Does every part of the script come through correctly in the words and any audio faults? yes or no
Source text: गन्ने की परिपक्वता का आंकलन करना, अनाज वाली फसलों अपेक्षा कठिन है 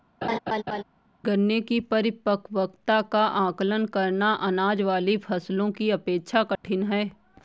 no